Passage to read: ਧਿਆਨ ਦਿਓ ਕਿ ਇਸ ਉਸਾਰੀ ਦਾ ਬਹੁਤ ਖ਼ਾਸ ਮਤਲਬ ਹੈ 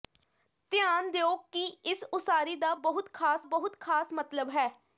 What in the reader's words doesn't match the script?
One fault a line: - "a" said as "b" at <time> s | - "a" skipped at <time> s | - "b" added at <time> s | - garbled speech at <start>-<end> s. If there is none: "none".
- "ਬਹੁਤ ਖ਼ਾਸ" added at 3.5 s